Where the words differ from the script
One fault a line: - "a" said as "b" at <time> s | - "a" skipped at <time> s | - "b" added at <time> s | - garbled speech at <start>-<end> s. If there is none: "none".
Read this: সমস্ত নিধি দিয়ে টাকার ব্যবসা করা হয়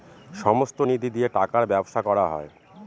none